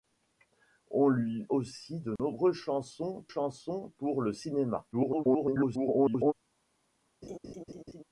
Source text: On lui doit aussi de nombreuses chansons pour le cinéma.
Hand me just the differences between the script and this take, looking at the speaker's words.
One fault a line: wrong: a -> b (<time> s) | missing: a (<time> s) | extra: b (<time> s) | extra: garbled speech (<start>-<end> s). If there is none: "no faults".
missing: doit (1.5 s)
extra: chansons (3.3 s)
extra: garbled speech (4.9-6.3 s)